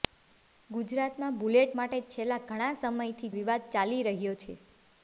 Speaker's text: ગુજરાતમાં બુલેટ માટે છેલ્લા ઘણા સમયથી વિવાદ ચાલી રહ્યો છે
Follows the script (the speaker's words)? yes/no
yes